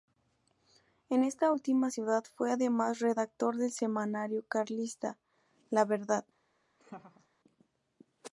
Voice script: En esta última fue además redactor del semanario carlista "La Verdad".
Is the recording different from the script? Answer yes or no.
yes